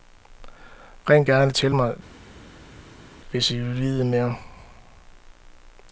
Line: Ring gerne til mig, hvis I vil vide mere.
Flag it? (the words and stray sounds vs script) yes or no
no